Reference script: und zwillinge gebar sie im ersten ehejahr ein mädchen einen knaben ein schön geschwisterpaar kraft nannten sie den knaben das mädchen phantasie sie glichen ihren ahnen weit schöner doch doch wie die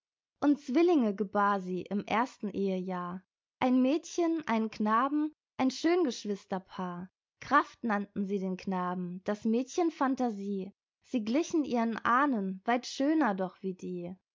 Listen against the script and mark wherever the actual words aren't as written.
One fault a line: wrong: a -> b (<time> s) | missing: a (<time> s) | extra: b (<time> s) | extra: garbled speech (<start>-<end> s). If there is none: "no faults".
missing: doch (13.6 s)